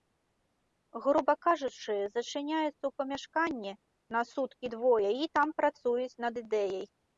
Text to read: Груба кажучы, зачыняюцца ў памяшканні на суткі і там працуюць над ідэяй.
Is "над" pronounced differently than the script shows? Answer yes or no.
no